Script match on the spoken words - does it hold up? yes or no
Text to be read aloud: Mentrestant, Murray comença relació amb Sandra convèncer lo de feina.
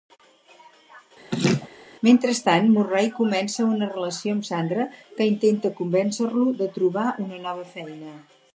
no